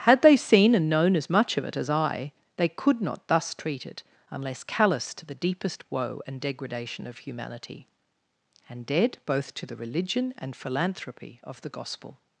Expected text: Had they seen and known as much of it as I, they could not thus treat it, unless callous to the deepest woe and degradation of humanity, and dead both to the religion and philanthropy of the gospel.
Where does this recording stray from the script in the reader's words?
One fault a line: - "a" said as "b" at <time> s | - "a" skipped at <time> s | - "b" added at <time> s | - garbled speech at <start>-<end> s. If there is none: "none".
none